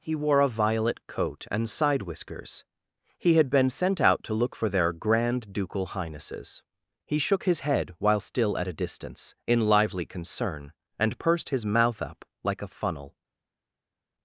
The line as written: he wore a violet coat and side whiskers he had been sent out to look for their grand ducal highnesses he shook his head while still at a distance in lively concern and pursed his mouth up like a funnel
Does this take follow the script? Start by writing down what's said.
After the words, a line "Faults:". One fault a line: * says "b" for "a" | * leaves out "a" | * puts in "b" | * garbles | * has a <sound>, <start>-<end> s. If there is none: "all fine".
he wore a violet coat and side whiskers he had been sent out to look for their grand ducal highnesses he shook his head while still at a distance in lively concern and pursed his mouth up like a funnel
Faults:
all fine